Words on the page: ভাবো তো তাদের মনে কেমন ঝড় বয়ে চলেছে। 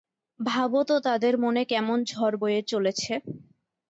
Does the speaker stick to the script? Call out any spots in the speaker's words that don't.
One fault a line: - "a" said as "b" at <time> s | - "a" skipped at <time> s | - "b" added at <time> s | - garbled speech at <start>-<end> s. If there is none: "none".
none